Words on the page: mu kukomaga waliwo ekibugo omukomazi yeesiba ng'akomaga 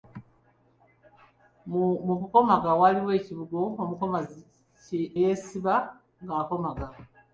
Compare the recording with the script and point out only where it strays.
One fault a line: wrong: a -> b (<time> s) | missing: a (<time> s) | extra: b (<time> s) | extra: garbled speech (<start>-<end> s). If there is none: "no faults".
no faults